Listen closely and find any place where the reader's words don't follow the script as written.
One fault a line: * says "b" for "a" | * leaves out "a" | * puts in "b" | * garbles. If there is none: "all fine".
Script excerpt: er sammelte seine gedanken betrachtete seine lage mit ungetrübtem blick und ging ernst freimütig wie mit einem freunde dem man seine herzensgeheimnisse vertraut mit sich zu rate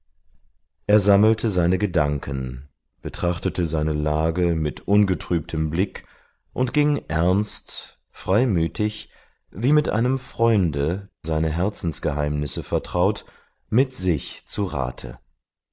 * leaves out "dem man"